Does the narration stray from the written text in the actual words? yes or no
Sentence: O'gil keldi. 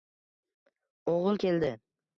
no